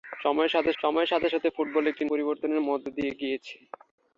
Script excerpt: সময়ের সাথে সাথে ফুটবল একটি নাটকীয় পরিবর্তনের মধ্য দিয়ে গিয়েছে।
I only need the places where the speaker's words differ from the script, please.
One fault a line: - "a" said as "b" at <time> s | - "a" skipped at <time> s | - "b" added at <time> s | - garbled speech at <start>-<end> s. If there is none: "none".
- "সময়ের" added at 0.8 s
- "সাথে" added at 1.3 s
- "নাটকীয়" skipped at 2.0 s